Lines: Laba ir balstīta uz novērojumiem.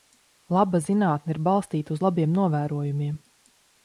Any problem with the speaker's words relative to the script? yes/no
yes